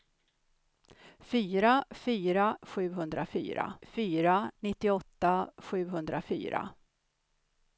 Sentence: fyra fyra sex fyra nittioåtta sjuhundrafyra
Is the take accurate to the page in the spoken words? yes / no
no